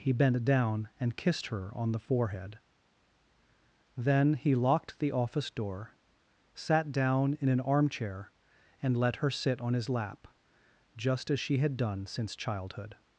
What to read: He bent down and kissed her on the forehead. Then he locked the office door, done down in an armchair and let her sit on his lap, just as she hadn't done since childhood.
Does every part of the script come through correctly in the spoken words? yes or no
no